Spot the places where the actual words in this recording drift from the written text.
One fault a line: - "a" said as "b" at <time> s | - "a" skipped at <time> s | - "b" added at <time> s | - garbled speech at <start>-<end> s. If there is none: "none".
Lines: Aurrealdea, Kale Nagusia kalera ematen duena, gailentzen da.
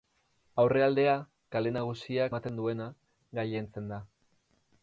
- "kalera" skipped at 2.3 s